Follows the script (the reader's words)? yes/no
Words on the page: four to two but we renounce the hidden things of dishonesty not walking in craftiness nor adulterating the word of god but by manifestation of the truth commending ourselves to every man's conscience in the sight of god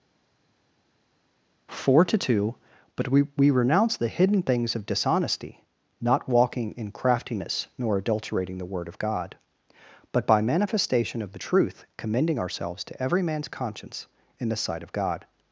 no